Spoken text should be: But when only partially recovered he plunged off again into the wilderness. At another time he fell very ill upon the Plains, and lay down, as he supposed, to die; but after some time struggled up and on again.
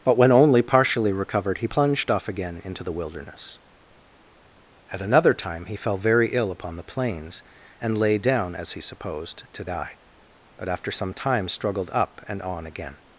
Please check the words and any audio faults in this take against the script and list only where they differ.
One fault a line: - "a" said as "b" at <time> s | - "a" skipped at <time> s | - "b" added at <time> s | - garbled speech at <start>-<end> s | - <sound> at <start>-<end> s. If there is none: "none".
none